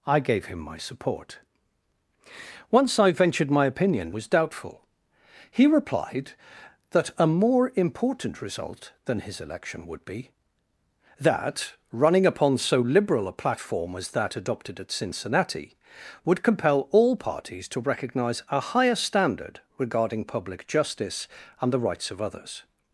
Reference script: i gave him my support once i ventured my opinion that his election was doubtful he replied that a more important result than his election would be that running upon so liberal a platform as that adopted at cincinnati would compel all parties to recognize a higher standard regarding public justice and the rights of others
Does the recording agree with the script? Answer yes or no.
no